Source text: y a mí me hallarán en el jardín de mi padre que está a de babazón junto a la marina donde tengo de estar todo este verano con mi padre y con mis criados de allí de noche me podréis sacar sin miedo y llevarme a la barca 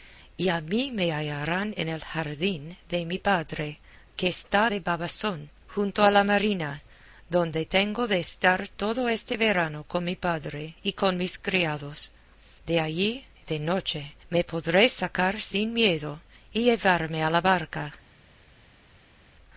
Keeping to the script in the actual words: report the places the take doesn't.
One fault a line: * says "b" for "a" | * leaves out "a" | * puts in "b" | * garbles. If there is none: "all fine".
all fine